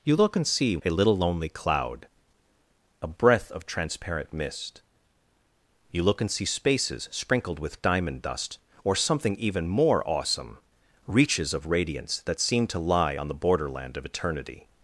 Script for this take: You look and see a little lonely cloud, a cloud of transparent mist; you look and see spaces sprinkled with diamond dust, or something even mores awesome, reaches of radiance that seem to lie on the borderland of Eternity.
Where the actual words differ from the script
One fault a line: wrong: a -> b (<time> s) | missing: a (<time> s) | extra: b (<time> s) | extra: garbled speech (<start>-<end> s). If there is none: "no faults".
wrong: cloud -> breath (3.1 s)
wrong: mores -> more (9.7 s)